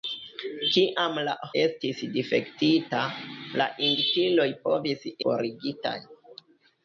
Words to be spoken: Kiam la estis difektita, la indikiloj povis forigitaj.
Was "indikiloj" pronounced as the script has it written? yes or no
yes